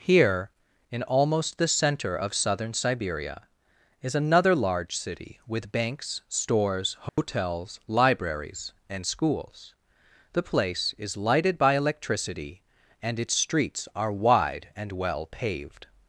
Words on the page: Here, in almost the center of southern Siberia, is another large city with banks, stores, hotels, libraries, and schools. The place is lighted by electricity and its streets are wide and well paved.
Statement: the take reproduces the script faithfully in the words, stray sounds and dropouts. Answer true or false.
false